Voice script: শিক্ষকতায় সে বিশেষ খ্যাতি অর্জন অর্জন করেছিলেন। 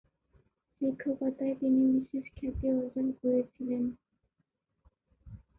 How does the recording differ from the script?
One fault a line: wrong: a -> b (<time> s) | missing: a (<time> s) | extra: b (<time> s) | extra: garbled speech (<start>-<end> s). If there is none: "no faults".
wrong: সে -> তিনি (1.6 s)
missing: অর্জন (3.1 s)